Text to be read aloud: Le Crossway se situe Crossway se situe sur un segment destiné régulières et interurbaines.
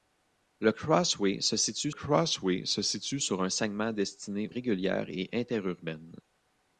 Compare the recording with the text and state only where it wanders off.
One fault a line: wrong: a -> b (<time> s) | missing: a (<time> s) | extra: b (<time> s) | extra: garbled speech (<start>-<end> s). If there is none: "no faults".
no faults